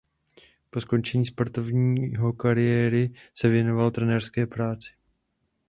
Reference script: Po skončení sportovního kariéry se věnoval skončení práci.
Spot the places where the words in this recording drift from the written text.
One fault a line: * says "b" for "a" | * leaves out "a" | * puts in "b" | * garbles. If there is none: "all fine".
* says "trenérské" for "skončení"